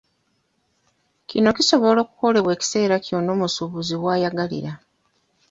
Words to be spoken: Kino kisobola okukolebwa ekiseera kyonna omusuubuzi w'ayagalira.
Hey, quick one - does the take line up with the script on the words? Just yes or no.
yes